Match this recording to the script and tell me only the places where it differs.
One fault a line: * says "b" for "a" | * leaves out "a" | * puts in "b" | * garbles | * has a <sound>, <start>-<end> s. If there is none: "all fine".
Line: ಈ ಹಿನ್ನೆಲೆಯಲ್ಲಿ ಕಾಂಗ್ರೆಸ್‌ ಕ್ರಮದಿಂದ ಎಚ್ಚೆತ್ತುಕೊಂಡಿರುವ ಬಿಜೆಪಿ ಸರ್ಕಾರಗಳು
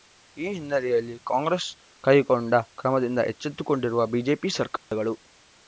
* puts in "ಕೈಗೊಂಡ"
* has a dropout, 4.8-4.9 s